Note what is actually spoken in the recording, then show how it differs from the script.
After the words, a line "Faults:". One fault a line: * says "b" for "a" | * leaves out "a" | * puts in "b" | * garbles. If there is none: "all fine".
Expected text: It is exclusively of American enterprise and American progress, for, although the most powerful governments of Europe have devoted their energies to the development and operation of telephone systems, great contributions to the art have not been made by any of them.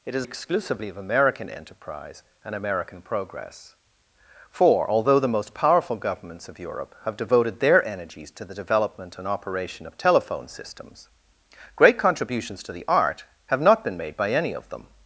It is exclusively of American enterprise and American progress, for, although the most powerful governments of Europe have devoted their energies to the development and operation of telephone systems, great contributions to the art have not been made by any of them.
Faults:
all fine